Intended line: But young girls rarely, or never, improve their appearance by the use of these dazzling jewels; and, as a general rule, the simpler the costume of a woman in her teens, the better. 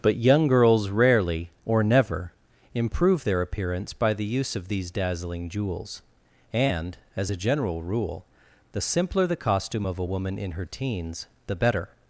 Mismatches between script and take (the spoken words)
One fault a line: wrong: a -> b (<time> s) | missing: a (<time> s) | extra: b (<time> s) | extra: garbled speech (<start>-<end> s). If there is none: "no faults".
no faults